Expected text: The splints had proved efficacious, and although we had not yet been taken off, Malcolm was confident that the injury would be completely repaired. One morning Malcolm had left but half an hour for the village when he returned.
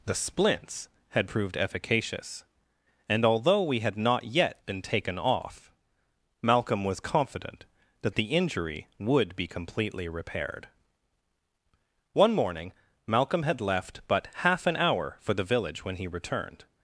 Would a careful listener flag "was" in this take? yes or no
no